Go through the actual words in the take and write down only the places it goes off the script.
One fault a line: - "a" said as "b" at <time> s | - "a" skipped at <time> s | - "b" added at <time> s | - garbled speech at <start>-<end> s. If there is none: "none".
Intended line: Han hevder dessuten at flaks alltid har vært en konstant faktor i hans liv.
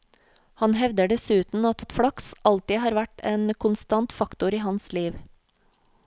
- "at" added at 1.8 s